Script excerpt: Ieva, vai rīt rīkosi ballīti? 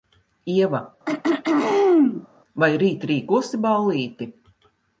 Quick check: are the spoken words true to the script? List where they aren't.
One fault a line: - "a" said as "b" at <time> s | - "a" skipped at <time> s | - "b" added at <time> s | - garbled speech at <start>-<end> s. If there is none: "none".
none